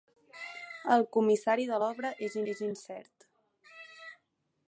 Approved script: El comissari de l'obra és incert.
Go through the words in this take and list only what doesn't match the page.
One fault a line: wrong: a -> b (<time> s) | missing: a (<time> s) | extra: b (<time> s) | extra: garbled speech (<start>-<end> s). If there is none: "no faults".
extra: és (2.5 s)